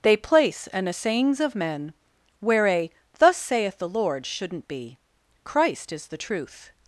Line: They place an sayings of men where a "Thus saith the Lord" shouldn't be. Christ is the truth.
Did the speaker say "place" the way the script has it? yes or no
yes